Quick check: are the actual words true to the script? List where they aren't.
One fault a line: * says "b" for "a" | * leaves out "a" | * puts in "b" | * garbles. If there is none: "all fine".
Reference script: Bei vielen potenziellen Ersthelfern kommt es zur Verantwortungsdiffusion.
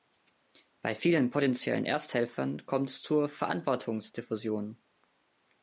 all fine